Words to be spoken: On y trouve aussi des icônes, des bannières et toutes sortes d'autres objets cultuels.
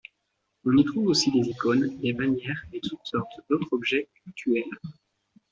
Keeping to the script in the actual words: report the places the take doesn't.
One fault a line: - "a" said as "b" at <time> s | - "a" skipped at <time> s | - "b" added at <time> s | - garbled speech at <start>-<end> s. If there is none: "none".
none